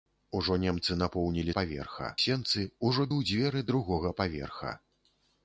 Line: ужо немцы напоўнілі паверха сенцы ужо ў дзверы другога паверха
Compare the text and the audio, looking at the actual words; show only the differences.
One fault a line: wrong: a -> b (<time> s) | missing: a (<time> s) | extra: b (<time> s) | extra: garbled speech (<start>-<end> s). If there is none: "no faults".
no faults